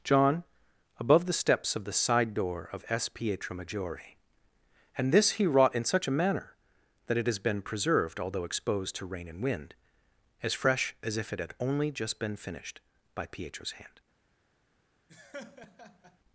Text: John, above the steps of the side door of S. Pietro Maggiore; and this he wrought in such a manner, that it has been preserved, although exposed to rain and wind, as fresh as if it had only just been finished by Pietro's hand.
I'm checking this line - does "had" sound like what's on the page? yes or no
yes